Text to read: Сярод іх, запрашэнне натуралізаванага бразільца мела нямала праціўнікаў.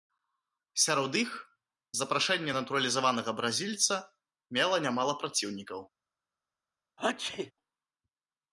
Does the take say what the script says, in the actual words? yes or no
yes